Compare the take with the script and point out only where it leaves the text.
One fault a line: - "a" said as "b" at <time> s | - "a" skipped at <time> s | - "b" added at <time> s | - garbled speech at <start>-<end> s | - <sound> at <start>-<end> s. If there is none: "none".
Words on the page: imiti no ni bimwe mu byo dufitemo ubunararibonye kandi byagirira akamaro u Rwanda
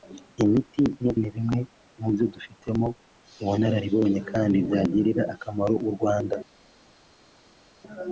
none